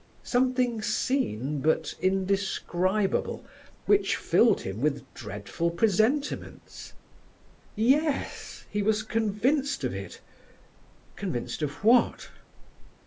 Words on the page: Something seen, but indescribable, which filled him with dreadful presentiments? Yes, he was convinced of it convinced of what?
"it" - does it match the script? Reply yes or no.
yes